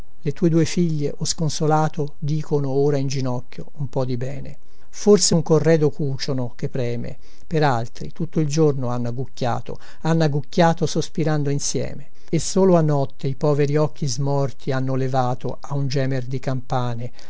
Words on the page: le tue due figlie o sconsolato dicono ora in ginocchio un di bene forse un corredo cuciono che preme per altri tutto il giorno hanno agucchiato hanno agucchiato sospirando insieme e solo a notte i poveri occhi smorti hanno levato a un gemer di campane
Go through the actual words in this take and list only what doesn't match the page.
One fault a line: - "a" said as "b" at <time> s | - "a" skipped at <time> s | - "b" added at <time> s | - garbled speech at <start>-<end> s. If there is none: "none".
- "po" added at 3.9 s